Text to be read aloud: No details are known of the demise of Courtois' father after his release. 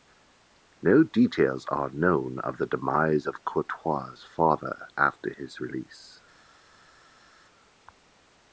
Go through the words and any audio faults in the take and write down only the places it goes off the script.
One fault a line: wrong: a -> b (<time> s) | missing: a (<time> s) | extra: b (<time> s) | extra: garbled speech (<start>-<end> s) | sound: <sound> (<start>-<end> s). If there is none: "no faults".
no faults